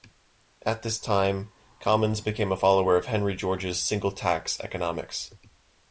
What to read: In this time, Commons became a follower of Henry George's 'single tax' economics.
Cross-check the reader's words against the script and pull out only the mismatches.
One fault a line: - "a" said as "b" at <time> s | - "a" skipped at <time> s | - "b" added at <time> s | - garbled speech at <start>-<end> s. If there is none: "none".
- "In" said as "At" at 0.6 s